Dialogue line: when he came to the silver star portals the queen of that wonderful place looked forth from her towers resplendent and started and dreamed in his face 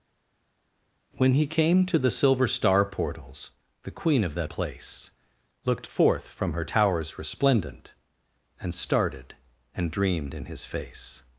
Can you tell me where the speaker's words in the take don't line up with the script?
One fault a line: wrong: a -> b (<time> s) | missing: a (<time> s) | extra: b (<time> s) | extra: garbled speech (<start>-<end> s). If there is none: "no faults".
missing: wonderful (4.5 s)